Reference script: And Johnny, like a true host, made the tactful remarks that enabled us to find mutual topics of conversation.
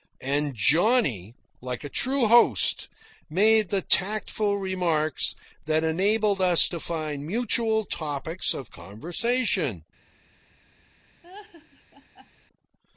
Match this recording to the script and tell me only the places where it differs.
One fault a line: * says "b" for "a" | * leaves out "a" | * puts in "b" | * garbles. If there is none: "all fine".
all fine